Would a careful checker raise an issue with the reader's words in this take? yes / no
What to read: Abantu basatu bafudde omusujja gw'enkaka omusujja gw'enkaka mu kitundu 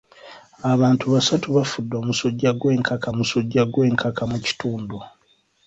no